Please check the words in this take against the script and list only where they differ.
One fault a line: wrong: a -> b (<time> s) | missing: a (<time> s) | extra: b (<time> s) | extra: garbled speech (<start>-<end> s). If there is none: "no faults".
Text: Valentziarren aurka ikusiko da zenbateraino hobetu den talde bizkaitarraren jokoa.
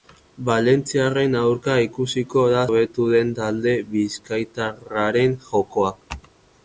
missing: zenbateraino (2.6 s)